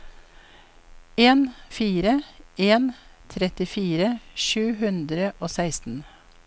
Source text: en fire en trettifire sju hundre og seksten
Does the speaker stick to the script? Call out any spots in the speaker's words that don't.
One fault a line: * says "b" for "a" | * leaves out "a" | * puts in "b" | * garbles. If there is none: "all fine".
all fine